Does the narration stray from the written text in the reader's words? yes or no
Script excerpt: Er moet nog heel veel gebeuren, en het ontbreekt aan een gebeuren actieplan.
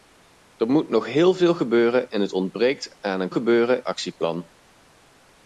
no